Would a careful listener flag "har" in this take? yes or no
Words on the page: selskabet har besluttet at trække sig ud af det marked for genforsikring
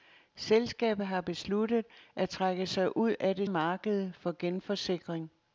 no